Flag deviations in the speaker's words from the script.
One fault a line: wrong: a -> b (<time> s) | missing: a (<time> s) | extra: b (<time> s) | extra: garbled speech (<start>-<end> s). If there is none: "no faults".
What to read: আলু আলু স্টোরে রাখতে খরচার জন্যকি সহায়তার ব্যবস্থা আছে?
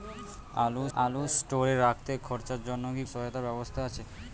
no faults